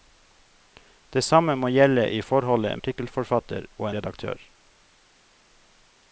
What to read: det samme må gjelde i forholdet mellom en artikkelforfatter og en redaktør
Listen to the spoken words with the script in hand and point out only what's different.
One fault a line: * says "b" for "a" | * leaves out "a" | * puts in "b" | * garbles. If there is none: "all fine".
* leaves out "mellom en"
* leaves out "en"